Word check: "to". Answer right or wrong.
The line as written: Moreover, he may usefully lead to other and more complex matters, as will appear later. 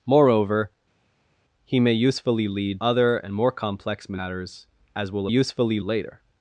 wrong